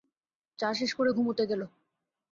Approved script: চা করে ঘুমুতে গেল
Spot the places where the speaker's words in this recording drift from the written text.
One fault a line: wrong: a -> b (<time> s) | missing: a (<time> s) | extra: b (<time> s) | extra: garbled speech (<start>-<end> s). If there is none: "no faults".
extra: শেষ (0.7 s)